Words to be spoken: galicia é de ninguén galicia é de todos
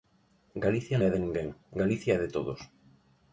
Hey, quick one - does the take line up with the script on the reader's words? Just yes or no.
yes